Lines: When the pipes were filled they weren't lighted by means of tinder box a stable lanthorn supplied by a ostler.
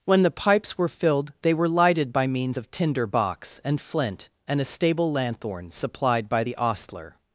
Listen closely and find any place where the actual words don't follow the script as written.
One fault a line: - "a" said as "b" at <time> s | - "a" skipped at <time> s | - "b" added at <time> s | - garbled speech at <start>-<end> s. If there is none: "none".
- "weren't" said as "were" at 1.5 s
- "and flint and" added at 3.6 s
- "a" said as "the" at 6.4 s